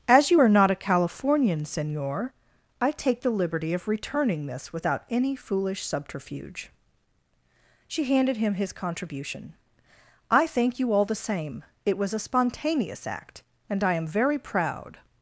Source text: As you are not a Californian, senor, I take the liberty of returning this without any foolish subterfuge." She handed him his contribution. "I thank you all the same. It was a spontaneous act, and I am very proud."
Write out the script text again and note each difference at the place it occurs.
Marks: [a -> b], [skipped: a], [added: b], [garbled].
As you are not a Californian, senor, I take the liberty of returning this without any foolish subterfuge." She handed him his contribution. "I thank you all the same. It was a spontaneous act, and I am very proud."